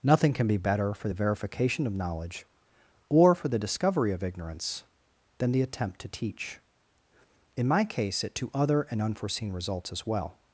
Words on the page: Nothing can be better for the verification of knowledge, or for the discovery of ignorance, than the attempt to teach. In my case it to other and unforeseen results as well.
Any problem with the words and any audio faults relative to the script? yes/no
no